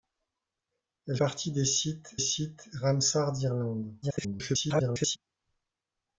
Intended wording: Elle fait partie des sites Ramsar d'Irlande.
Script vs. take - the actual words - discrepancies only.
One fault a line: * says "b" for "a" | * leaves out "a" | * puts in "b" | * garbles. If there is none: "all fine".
* leaves out "fait"
* puts in "sites"
* garbles